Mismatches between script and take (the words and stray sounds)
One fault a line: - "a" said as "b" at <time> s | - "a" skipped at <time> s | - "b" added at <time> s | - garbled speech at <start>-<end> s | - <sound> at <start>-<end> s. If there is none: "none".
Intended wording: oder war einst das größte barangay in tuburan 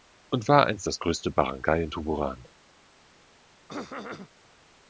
- "oder" said as "und" at 0.3 s
- throat clearing at 3.7-4.3 s